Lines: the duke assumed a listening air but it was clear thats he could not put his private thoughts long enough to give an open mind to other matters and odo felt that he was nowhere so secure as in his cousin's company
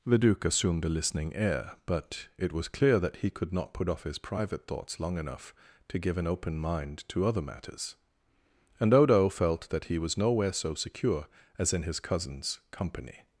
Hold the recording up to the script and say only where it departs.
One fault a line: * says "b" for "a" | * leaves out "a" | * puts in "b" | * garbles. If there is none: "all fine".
* says "that" for "thats"
* puts in "off"